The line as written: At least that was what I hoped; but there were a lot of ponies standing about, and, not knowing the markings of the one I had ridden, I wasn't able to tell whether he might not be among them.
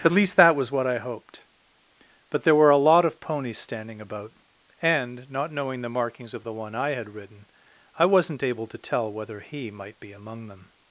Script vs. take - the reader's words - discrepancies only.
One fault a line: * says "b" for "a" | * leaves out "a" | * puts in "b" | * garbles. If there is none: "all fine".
* leaves out "not"